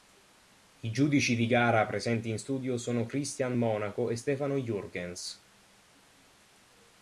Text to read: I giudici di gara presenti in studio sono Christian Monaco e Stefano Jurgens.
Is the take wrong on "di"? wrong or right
right